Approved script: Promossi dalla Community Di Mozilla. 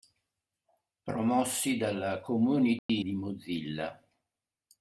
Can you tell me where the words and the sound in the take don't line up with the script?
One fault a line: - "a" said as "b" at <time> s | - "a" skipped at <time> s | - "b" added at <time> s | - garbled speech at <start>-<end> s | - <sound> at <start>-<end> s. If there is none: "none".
- dropout at 2.8-2.9 s